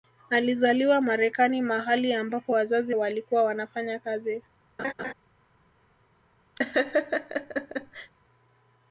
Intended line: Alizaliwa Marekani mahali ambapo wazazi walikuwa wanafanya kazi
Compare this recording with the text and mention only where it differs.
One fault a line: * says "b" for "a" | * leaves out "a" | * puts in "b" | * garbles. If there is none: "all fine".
all fine